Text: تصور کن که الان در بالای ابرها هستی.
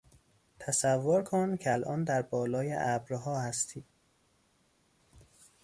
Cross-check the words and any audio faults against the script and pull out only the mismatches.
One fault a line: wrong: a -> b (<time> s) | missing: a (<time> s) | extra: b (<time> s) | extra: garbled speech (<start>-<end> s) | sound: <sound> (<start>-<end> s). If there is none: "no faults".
no faults